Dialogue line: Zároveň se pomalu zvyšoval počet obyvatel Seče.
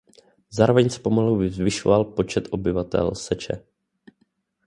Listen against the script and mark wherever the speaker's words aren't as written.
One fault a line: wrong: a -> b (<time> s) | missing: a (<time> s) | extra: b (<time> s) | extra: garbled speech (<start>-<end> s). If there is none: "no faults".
no faults